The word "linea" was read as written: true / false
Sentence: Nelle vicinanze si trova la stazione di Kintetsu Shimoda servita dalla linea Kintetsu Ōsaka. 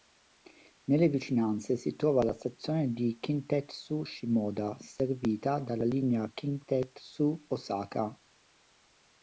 true